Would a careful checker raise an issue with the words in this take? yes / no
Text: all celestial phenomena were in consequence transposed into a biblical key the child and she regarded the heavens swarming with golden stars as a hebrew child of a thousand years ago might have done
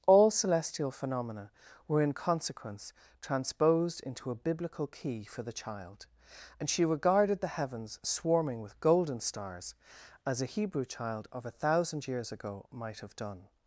yes